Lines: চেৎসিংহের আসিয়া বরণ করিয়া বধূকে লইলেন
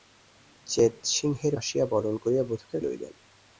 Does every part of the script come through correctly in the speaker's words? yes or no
yes